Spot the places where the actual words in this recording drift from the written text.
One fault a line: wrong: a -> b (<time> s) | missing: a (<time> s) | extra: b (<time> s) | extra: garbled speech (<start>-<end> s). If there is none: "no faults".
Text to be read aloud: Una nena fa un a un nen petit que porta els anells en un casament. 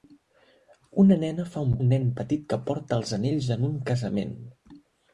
no faults